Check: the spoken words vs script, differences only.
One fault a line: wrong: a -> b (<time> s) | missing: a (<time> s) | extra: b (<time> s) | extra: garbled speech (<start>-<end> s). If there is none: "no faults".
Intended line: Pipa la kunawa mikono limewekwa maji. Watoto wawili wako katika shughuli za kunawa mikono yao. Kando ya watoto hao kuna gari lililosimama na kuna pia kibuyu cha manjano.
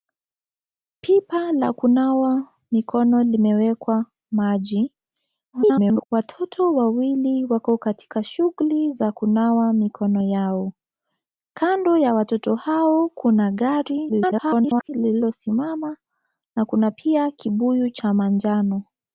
extra: garbled speech (5.5-6.1 s)
extra: garbled speech (14.1-14.9 s)